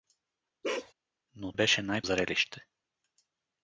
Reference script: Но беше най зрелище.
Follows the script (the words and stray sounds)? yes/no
no